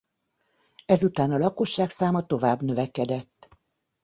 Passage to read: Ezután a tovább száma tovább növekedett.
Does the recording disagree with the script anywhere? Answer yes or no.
yes